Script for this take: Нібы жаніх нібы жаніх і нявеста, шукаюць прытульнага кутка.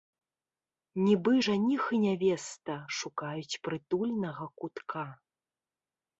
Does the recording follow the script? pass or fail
fail